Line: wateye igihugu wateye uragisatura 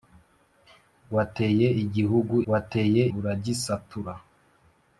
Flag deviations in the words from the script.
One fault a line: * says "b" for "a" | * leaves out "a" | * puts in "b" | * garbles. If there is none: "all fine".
all fine